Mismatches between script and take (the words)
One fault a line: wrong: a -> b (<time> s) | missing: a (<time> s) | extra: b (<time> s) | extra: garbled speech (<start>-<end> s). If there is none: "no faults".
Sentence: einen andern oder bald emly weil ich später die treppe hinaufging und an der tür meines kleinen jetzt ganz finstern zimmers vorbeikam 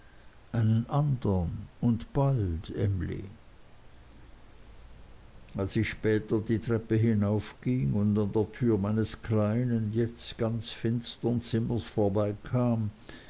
wrong: oder -> und (1.8 s)
wrong: weil -> als (5.5 s)